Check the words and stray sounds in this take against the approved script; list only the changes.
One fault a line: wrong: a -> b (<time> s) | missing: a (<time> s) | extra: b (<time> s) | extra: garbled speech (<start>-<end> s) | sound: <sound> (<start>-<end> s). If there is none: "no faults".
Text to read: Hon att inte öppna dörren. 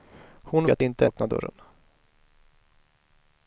no faults